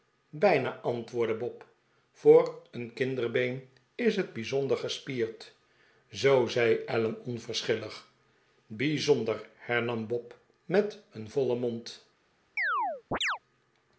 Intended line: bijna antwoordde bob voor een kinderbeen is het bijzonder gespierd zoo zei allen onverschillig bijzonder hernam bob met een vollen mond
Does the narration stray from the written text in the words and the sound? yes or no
yes